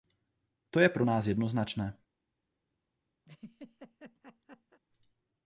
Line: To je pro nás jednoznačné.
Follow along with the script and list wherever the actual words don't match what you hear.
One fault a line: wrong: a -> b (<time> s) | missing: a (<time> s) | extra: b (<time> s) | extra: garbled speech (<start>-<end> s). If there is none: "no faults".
no faults